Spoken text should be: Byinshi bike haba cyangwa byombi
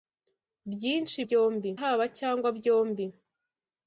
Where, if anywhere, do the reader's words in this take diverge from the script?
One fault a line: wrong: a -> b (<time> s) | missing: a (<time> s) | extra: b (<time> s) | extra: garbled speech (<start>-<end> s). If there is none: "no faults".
wrong: bike -> byombi (1.2 s)